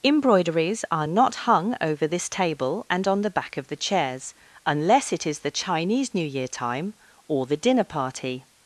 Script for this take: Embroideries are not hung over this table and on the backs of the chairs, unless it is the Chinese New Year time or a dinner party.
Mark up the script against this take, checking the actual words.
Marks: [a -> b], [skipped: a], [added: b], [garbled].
Embroideries are not hung over this table and on the [backs -> back] of the chairs, unless it is the Chinese New Year time or [a -> the] dinner party.